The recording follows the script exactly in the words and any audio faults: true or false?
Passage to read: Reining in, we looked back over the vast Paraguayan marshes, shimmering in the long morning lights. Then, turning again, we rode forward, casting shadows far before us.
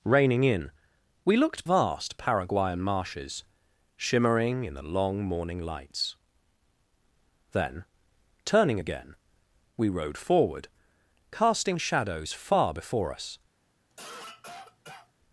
false